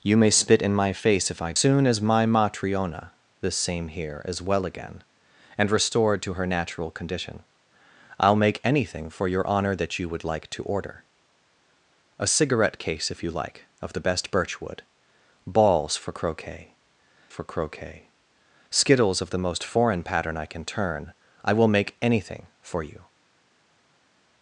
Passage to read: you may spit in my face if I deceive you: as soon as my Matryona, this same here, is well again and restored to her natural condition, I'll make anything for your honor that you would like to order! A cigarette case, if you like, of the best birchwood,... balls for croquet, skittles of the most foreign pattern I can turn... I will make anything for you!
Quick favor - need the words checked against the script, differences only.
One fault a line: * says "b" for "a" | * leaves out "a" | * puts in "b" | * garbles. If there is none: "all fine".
* leaves out "deceive you as"
* puts in "for croquet"